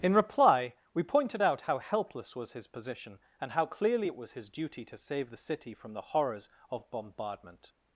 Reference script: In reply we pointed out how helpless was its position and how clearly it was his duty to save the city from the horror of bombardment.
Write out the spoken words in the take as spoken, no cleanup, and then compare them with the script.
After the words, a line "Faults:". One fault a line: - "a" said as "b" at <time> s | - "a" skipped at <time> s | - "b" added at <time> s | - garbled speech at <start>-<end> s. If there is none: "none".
In reply we pointed out how helpless was his position and how clearly it was his duty to save the city from the horrors of bombardment.
Faults:
- "its" said as "his" at 2.5 s
- "horror" said as "horrors" at 6.1 s